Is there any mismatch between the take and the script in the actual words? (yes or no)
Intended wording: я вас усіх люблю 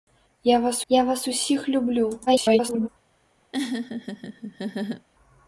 yes